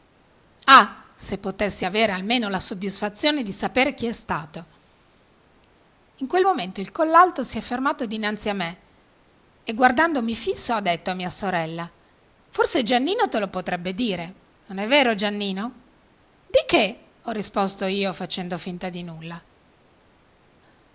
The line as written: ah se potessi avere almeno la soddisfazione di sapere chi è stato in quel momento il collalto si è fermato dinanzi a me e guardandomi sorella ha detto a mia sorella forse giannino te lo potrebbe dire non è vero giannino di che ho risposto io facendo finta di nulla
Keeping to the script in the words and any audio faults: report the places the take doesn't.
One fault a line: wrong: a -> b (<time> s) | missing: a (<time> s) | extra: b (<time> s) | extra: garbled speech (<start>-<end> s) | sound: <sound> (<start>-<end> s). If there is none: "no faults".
wrong: sorella -> fisso (10.4 s)